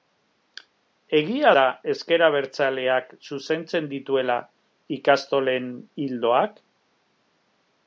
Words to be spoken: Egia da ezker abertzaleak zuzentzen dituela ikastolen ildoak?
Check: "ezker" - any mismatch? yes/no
no